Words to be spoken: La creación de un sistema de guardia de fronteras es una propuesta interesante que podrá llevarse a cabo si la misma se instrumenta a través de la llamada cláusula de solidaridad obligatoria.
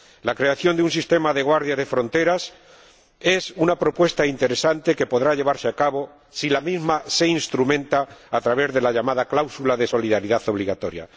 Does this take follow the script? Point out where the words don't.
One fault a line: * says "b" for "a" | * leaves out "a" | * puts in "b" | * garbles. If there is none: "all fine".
all fine